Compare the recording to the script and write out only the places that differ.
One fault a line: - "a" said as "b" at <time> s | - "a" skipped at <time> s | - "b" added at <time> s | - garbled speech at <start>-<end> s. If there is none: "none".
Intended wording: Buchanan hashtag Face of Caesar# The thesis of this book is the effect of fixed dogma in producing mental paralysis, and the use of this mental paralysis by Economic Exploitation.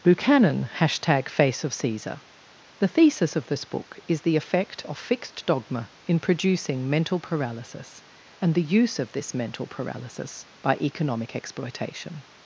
none